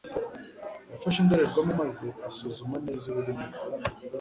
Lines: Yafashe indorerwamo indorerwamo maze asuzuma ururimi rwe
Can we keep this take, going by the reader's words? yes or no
no